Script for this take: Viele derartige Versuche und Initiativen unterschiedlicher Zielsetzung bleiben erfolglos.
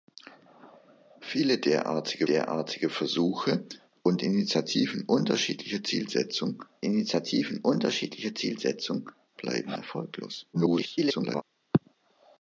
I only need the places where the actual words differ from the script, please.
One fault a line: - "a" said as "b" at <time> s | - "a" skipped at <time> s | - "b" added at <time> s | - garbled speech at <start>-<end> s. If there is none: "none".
- "derartige" added at 2.2 s
- "Initiativen unterschiedlicher Zielsetzung" added at 6.8 s
- garbled speech at 10.5-11.4 s